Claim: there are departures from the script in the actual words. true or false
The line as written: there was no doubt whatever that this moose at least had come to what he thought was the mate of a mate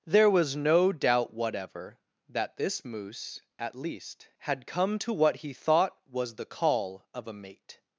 true